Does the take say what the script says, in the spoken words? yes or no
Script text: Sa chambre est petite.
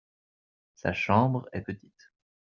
yes